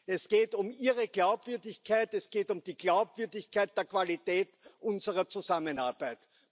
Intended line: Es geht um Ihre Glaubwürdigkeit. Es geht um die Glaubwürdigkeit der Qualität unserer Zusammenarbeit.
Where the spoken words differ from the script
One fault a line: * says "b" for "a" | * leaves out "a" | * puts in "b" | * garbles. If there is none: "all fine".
all fine